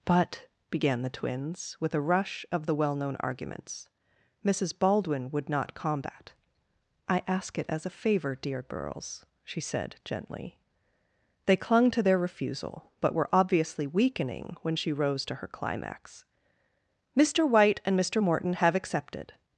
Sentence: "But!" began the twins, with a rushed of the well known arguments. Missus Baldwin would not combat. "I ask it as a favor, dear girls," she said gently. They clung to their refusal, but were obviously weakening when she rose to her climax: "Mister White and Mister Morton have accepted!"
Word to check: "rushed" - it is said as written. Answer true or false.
false